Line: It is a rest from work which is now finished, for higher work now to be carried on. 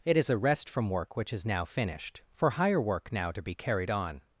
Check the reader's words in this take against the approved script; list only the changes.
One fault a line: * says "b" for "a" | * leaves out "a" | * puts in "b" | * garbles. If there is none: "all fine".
all fine